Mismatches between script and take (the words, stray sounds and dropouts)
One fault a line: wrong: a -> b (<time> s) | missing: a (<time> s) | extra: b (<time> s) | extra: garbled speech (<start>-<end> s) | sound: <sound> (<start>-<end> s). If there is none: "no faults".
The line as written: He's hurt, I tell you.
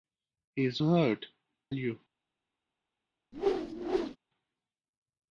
missing: I tell (1.3 s)
sound: whoosh (3.3-4.2 s)